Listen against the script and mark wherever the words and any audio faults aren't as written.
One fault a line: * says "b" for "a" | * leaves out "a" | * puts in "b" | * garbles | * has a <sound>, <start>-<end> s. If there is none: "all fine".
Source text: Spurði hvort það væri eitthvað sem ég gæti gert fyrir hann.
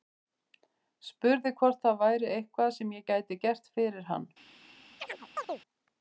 * has a chirp, 5.0-5.6 s